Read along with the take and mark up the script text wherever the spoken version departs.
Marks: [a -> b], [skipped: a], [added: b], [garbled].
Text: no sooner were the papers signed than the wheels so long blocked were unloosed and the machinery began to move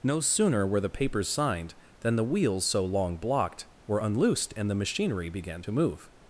no sooner were the papers signed than the wheels so long blocked were unloosed and the machinery began to move